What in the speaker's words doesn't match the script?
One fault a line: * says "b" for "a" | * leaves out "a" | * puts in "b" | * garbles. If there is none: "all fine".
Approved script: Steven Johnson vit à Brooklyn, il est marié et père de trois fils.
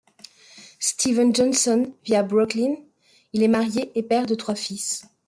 all fine